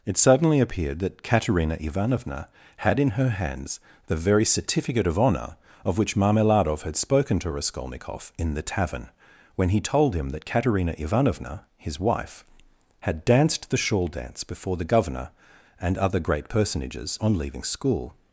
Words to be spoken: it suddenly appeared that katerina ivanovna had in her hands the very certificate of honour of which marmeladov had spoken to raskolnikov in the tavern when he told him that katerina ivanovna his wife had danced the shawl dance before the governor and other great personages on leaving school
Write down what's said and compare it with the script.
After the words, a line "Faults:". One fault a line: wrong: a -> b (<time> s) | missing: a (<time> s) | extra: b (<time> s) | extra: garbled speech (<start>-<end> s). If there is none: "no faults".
it suddenly appeared that katerina ivanovna had in her hands the very certificate of honour of which marmeladov had spoken to raskolnikov in the tavern when he told him that katerina ivanovna his wife had danced the shawl dance before the governor and other great personages on leaving school
Faults:
no faults